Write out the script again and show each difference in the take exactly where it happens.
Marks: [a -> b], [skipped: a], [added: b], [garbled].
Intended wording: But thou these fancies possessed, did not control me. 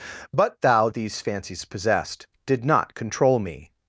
But thou these fancies possessed, did not control me.